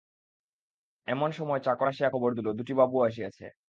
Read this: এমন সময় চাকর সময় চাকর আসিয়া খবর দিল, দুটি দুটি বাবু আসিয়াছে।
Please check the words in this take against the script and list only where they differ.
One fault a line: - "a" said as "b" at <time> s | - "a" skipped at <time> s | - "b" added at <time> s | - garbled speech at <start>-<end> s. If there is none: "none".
- "সময় চাকর" skipped at 1.9 s
- "দুটি" skipped at 2.7 s